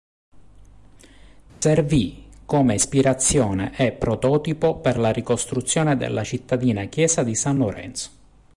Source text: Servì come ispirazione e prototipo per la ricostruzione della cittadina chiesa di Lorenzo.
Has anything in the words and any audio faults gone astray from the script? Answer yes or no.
yes